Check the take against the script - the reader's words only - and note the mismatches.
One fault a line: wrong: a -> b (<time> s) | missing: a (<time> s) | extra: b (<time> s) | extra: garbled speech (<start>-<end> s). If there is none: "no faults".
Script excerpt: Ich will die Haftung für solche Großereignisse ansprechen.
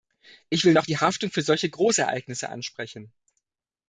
extra: noch (0.7 s)